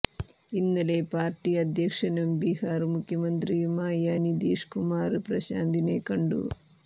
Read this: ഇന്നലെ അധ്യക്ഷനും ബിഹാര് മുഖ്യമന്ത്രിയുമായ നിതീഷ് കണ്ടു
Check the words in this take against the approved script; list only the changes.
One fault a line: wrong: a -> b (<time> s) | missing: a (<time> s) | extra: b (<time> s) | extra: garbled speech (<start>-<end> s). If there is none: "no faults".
extra: പാര്ട്ടി (1.1 s)
extra: കുമാര് പ്രശാന്തിനെ (4.7 s)